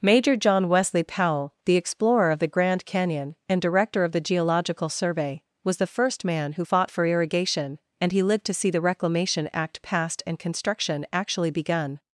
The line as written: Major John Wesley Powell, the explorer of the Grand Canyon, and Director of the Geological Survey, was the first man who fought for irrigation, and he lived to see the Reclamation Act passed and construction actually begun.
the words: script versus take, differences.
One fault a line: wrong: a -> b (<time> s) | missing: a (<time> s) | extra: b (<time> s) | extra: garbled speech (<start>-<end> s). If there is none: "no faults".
no faults